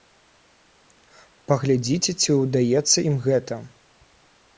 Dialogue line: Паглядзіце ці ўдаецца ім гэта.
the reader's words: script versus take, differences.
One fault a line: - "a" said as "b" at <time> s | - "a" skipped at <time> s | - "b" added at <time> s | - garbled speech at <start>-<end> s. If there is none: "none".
none